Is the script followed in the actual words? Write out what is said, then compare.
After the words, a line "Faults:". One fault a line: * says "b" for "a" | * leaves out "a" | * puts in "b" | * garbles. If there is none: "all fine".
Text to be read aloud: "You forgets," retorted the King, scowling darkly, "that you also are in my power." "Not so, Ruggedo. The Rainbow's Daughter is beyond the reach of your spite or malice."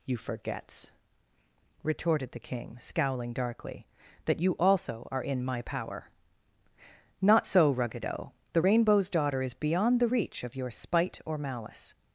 "You forgets," retorted the King, scowling darkly, "that you also are in my power." "Not so, Ruggedo. The Rainbow's Daughter is beyond the reach of your spite or malice."
Faults:
all fine